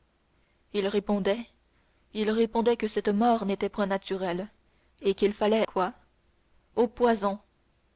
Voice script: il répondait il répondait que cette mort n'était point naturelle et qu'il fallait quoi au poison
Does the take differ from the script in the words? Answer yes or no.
no